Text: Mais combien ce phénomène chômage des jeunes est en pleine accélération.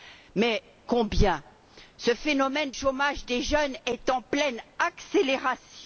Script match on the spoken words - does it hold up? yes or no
yes